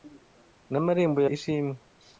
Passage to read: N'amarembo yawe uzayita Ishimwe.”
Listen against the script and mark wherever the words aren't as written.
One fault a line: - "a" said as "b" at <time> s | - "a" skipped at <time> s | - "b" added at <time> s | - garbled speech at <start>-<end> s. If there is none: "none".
- "yawe uzayita" skipped at 1.2 s